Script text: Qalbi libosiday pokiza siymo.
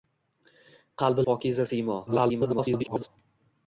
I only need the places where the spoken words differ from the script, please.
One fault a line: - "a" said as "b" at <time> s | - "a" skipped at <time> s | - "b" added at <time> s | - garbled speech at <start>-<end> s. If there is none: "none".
- "libosiday" skipped at 1.2 s
- garbled speech at 2.1-3.1 s